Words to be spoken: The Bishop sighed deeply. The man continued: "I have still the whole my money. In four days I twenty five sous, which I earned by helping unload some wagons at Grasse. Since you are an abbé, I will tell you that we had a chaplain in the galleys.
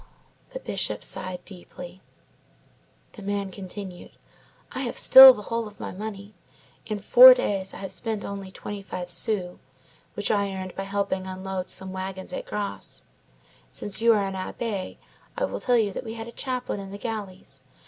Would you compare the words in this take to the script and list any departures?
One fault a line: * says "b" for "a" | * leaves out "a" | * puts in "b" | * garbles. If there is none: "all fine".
* puts in "of"
* puts in "have spent only"